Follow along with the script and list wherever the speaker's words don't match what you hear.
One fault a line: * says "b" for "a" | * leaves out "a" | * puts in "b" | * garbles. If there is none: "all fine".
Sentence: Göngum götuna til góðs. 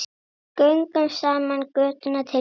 * puts in "saman"